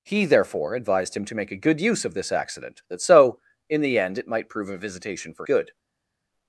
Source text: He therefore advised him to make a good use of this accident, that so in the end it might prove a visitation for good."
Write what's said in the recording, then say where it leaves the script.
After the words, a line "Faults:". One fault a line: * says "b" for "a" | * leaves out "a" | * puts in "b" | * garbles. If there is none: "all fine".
He therefore advised him to make a good use of this accident, that so in the end it might prove a visitation for good."
Faults:
all fine